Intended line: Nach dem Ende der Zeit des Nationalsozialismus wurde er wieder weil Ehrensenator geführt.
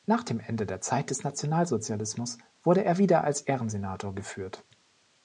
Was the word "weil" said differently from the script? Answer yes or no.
yes